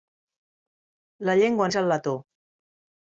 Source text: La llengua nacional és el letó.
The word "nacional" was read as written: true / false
false